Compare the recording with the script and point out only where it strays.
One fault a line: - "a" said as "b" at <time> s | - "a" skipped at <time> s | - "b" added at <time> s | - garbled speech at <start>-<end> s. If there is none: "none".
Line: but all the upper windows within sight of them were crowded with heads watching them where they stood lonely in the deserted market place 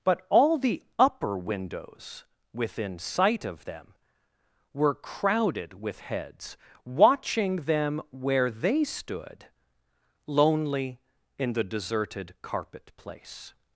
- "market" said as "carpet" at 12.4 s